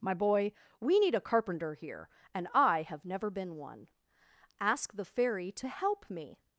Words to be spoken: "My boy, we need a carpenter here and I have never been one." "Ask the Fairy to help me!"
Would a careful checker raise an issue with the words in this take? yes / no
no